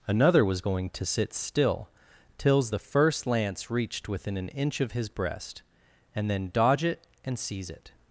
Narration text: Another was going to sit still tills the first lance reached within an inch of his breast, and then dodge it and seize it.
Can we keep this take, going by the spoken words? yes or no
yes